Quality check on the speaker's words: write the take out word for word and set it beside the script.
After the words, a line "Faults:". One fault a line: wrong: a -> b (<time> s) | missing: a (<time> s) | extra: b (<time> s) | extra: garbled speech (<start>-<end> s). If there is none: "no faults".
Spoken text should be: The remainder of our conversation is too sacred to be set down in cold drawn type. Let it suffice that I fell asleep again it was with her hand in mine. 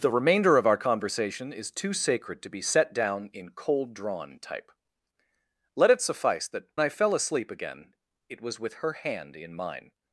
The remainder of our conversation is too sacred to be set down in cold drawn type. Let it suffice that I fell asleep again it was with her hand in mine.
Faults:
no faults